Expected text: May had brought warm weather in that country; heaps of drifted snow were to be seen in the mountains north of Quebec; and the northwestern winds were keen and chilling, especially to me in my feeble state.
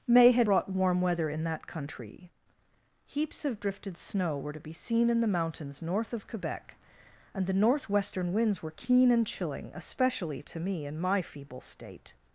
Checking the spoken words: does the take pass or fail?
pass